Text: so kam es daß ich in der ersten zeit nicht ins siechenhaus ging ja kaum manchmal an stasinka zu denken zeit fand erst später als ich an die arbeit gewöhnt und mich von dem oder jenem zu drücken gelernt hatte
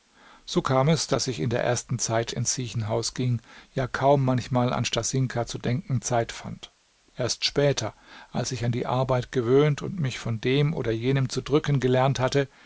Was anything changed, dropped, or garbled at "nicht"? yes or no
yes